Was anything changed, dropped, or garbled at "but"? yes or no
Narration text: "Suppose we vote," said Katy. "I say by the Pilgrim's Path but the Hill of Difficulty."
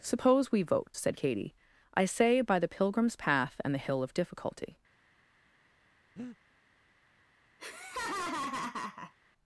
yes